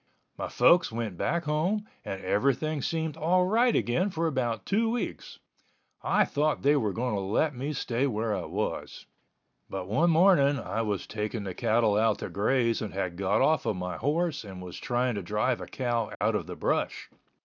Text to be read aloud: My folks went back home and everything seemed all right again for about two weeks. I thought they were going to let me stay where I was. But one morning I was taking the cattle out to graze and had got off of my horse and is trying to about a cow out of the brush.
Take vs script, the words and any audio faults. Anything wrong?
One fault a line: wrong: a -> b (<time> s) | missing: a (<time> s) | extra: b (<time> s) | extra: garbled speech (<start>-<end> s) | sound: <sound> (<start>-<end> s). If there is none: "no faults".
wrong: is -> was (14.6 s)
wrong: about -> drive (15.2 s)
sound: dropout (16.1-16.2 s)